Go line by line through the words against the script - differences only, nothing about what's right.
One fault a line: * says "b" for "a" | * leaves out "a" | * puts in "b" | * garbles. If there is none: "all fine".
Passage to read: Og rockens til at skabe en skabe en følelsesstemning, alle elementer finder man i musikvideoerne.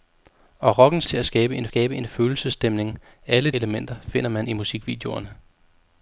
all fine